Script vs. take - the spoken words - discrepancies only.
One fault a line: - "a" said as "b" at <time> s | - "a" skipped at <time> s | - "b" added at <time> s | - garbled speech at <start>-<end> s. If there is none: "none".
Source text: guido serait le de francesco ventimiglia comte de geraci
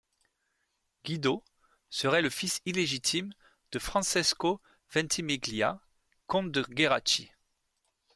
- "fils illégitime" added at 2.3 s